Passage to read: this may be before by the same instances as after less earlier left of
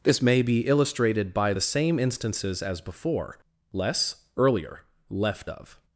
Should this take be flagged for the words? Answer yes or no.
yes